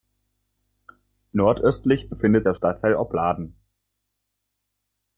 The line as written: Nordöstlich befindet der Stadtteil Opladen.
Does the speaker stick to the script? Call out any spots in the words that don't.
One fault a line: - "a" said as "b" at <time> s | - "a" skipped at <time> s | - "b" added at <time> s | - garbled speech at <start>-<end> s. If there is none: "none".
none